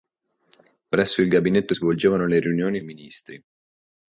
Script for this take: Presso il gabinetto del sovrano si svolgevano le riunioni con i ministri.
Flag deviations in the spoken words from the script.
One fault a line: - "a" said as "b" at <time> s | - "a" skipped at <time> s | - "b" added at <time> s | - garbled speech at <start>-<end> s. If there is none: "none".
- "del sovrano si" skipped at 1.8 s
- "con" skipped at 2.8 s